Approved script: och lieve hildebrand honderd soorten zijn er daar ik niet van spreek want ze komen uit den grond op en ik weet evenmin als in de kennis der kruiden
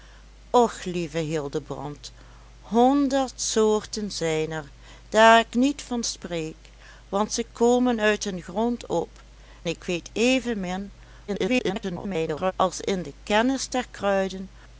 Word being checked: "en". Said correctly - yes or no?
no